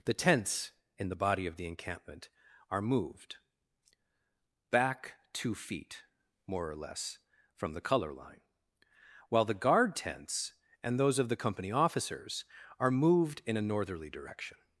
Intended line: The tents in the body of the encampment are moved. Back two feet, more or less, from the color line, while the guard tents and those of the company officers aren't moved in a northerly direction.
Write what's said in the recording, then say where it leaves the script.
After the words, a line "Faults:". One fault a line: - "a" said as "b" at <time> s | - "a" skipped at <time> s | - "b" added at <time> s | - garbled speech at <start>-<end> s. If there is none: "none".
The tents in the body of the encampment are moved. Back two feet, more or less, from the color line, while the guard tents and those of the company officers are moved in a northerly direction.
Faults:
- "aren't" said as "are" at 12.8 s